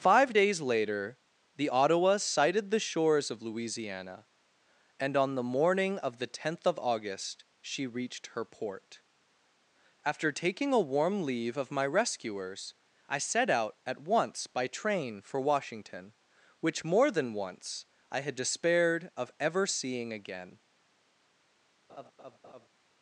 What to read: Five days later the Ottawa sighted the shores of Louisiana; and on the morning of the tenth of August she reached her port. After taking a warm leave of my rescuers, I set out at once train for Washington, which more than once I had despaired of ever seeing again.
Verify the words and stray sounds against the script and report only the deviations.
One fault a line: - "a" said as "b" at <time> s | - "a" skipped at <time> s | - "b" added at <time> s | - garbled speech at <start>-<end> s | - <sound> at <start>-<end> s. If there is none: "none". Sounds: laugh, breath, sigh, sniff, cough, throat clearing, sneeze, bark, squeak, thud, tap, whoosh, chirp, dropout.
- "by" added at 14.5 s
- laugh at 21.9-22.7 s